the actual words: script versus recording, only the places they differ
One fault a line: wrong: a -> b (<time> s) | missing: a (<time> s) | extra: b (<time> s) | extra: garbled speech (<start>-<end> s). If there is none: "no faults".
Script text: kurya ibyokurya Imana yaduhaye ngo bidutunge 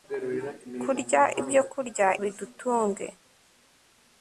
missing: Imana yaduhaye ngo (2.1 s)